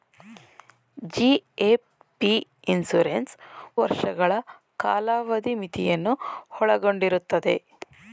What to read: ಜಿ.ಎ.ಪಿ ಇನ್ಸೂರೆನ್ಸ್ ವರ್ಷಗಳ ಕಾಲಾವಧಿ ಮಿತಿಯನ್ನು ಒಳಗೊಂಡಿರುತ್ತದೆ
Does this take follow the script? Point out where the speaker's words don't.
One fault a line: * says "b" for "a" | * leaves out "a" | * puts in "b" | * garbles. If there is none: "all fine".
all fine